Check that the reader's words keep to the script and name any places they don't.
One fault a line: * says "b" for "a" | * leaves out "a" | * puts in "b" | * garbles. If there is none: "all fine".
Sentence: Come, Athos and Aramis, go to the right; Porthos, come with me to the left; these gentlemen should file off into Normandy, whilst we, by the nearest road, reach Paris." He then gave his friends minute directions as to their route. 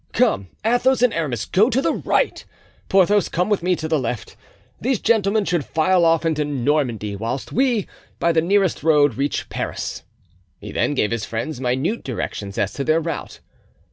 all fine